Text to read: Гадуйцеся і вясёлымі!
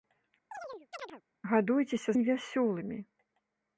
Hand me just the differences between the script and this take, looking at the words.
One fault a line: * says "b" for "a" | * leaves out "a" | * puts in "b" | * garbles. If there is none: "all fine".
all fine